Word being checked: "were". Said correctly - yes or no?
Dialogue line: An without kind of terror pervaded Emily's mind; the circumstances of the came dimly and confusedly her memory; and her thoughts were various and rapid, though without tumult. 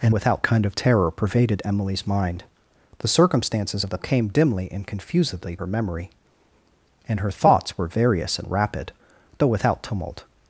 yes